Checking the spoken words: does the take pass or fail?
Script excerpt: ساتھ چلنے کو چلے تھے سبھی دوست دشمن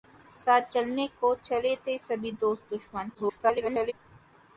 fail